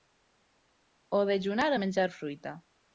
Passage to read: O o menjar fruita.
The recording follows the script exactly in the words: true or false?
false